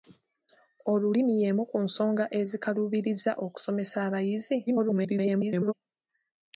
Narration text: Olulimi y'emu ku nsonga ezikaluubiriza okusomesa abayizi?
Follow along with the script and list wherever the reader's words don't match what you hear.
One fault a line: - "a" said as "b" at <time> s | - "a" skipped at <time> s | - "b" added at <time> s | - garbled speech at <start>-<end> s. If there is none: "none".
- garbled speech at 4.7-5.7 s